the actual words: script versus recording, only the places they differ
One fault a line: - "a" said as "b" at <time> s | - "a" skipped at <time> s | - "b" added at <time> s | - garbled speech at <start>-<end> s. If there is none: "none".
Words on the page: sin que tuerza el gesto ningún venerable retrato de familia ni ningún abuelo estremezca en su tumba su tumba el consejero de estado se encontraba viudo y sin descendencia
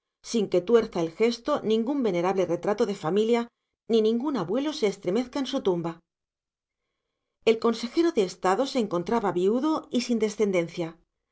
- "se" added at 4.7 s
- "su tumba" skipped at 6.0 s